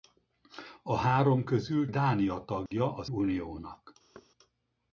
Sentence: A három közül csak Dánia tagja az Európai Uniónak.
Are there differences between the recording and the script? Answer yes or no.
yes